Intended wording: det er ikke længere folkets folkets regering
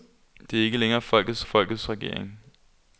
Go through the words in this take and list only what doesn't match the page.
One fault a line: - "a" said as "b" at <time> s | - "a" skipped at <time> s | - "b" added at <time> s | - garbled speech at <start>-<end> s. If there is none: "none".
none